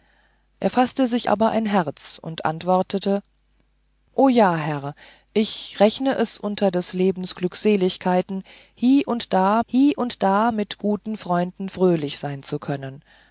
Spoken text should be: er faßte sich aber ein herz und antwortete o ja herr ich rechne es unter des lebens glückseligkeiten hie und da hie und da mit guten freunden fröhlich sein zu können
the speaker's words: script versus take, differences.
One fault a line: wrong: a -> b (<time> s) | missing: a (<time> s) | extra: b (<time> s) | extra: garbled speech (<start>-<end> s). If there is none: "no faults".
no faults